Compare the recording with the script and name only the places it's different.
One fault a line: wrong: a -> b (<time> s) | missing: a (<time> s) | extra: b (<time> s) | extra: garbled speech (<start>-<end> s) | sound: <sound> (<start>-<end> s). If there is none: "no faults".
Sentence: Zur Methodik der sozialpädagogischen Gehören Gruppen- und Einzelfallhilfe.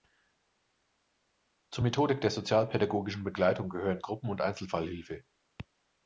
extra: Begleitung (3.2 s)